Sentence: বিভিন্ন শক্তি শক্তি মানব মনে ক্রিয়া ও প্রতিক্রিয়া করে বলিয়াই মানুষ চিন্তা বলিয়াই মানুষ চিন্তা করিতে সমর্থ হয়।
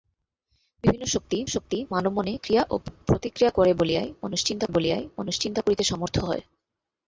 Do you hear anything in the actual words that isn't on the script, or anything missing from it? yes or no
no